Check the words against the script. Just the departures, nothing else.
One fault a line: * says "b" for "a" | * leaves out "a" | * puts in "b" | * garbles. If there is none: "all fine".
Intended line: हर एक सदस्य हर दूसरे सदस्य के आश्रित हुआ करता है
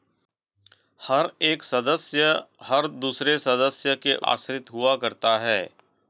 all fine